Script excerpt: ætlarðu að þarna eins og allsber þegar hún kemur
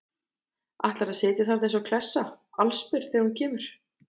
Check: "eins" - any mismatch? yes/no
no